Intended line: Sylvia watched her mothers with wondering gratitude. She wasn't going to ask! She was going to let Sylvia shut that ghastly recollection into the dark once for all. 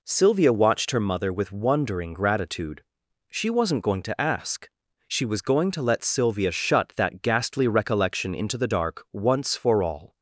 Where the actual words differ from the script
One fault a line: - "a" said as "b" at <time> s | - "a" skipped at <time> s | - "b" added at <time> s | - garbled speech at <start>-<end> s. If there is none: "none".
- "mothers" said as "mother" at 1.0 s